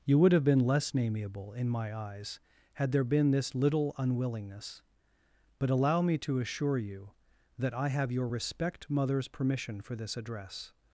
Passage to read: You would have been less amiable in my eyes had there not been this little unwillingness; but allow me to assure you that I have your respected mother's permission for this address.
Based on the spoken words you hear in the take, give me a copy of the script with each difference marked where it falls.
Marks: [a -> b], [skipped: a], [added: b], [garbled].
You would have been less amiable in my eyes had there [skipped: not] been this little unwillingness; but allow me to assure you that I have your [respected -> respect] mother's permission for this address.